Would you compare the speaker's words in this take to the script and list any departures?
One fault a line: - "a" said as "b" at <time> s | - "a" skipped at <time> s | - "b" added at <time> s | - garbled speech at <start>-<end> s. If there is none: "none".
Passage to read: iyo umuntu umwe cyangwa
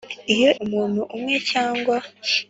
none